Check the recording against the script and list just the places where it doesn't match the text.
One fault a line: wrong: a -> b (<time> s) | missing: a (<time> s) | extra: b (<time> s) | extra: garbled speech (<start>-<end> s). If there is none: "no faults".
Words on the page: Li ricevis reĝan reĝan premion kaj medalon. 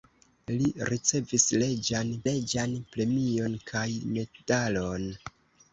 no faults